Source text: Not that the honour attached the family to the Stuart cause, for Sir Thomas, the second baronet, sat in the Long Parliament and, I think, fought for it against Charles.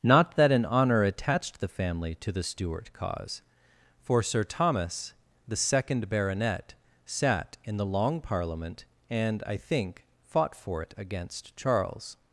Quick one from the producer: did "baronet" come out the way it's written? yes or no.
yes